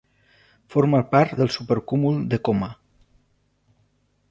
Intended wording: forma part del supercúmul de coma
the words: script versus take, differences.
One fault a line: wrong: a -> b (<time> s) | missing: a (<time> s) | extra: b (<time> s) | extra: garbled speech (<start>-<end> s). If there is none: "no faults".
no faults